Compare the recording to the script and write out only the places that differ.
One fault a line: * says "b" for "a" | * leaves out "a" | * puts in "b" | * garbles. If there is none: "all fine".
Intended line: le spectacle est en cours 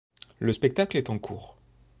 all fine